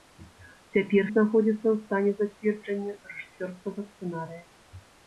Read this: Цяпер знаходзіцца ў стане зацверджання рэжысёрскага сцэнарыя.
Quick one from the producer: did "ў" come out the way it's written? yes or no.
yes